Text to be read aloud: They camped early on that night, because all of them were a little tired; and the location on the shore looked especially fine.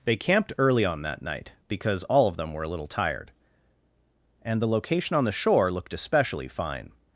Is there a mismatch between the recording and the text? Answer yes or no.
no